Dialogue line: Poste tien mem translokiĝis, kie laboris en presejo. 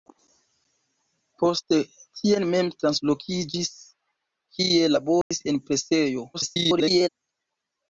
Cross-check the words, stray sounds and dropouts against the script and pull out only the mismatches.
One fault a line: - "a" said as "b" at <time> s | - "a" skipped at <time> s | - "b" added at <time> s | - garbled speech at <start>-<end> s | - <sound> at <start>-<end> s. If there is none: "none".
- dropout at 5.2-5.3 s
- garbled speech at 6.3-7.1 s